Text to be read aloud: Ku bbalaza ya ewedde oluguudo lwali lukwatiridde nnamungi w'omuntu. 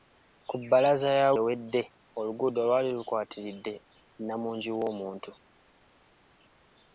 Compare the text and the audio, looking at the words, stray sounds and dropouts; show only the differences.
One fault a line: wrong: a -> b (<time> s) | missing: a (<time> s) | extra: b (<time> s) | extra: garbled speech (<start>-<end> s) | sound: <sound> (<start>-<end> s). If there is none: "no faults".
no faults